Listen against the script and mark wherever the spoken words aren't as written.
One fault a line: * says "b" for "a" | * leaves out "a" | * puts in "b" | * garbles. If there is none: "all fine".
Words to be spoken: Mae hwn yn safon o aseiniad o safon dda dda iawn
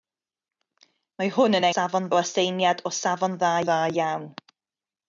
all fine